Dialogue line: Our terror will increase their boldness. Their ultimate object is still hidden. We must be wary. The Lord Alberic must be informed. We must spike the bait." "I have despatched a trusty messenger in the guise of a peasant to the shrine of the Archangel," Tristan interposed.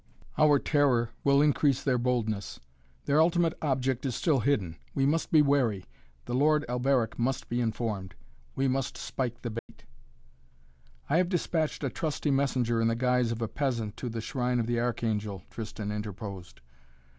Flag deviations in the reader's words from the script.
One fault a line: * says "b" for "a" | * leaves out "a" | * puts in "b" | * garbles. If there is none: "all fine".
all fine